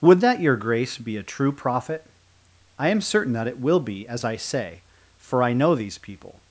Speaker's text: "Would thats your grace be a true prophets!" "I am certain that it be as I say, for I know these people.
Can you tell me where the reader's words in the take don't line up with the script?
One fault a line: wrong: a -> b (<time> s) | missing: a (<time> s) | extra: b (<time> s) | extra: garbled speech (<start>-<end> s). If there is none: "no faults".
wrong: thats -> that (0.2 s)
wrong: prophets -> prophet (1.5 s)
extra: will (3.6 s)